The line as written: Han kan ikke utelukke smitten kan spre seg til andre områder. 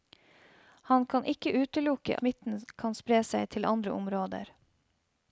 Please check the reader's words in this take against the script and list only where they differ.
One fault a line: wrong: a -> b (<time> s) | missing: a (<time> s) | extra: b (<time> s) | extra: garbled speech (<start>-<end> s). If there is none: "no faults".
no faults